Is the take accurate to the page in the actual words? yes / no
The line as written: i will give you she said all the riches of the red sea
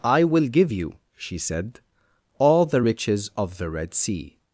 yes